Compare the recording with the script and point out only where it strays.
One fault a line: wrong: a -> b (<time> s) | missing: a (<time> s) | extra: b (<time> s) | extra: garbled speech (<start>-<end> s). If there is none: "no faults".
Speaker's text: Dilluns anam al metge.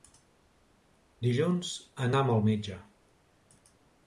no faults